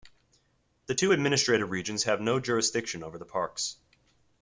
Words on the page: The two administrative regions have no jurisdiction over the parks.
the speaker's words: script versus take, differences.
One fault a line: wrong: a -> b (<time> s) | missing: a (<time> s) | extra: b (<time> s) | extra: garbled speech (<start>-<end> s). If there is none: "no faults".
no faults